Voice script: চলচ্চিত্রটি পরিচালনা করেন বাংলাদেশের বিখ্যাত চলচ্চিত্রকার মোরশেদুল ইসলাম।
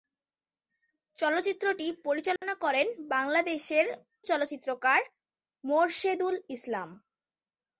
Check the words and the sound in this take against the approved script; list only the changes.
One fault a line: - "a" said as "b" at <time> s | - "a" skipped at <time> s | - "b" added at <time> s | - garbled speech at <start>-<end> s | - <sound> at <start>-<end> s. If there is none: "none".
- dropout at 2.4-2.4 s
- "বিখ্যাত" skipped at 3.9 s